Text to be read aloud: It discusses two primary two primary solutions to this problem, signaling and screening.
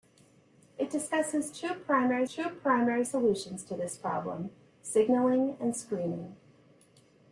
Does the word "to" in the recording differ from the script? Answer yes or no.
no